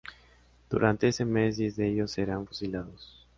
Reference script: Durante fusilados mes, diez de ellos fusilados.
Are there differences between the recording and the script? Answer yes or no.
yes